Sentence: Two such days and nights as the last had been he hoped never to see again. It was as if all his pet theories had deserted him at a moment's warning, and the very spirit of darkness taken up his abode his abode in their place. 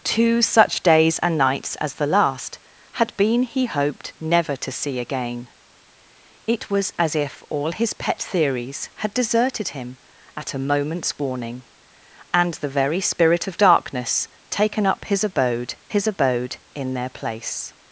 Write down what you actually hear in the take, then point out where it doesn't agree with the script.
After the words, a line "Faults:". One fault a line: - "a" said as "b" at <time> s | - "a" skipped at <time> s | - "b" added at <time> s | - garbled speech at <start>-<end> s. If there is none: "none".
Two such days and nights as the last had been he hoped never to see again. It was as if all his pet theories had deserted him at a moment's warning, and the very spirit of darkness taken up his abode his abode in their place.
Faults:
none